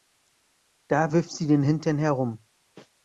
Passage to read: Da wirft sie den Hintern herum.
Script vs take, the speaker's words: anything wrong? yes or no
no